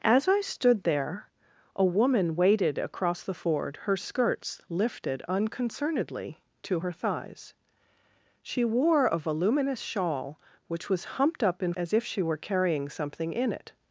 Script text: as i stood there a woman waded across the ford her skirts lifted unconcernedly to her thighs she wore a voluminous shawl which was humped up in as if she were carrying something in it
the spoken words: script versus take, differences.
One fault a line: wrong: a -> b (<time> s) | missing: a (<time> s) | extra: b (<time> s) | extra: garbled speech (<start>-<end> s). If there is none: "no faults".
no faults